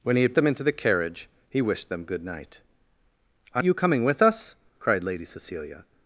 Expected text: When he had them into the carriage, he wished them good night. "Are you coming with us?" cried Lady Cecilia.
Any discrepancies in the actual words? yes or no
no